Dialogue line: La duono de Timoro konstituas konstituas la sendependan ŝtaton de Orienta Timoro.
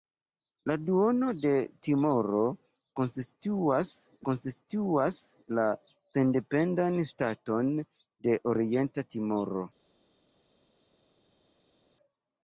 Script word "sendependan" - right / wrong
right